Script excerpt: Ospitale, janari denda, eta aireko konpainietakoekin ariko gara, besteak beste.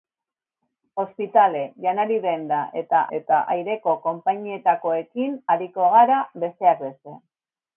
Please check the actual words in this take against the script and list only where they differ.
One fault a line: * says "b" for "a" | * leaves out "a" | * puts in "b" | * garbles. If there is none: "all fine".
* puts in "eta"